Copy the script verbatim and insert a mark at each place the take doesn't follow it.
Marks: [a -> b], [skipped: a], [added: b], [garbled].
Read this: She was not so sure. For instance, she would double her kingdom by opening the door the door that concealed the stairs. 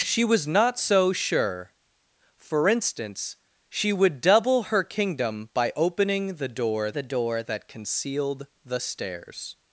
She was not so sure. For instance, she would double her kingdom by opening the door the door that concealed the stairs.